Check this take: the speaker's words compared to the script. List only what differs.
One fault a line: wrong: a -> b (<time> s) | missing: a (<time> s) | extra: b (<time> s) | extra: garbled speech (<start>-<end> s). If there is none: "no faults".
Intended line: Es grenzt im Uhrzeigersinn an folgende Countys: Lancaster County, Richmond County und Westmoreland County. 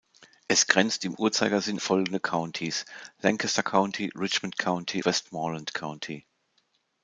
missing: an (1.8 s)
missing: und (5.0 s)